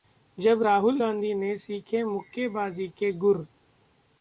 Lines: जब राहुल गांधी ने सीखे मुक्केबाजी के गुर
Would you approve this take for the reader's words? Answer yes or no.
yes